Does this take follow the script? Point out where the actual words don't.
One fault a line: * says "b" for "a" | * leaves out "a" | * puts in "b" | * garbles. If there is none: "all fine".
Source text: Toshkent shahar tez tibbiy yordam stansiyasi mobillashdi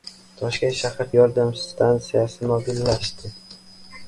* leaves out "tez tibbiy"